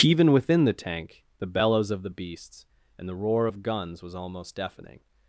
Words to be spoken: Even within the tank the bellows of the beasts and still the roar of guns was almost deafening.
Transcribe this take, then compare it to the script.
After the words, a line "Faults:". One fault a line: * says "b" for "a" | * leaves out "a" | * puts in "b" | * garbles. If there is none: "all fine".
Even within the tank the bellows of the beasts and the roar of guns was almost deafening.
Faults:
* leaves out "still"